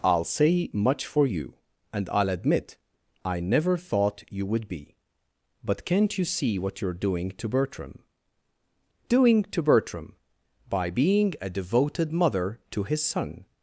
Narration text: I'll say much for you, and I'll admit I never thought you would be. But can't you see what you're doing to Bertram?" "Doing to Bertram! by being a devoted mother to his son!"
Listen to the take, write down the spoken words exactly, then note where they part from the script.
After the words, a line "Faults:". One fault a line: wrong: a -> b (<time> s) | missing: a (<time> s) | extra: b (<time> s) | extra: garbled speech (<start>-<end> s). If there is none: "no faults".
I'll say much for you, and I'll admit I never thought you would be. But can't you see what you're doing to Bertram?" "Doing to Bertram! by being a devoted mother to his son!"
Faults:
no faults